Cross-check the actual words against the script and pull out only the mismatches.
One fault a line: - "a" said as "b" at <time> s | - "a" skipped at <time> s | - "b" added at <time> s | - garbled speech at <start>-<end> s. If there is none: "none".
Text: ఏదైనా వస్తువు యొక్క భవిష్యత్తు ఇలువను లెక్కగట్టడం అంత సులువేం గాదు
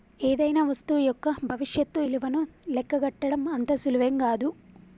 none